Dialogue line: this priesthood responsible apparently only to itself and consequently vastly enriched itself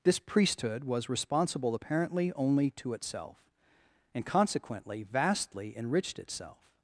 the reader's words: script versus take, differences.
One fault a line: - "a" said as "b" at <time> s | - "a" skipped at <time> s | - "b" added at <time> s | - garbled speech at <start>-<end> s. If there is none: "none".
- "was" added at 0.8 s